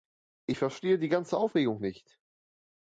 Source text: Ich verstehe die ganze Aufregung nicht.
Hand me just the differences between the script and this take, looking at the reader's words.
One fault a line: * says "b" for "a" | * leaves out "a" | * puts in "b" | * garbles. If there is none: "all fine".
all fine